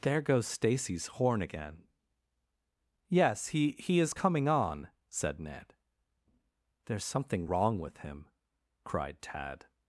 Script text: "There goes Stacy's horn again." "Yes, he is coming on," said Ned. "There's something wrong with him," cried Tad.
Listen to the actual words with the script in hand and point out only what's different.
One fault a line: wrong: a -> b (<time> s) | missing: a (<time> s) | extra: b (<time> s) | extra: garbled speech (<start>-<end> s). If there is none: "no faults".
extra: he (3.7 s)